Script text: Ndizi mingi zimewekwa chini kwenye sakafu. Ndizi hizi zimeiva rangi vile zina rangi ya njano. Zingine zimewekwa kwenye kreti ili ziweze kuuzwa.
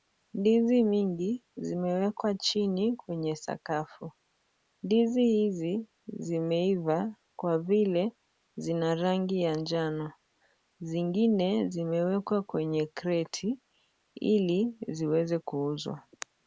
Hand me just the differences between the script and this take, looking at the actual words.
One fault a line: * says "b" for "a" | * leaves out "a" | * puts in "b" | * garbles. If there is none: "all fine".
* says "kwa" for "rangi"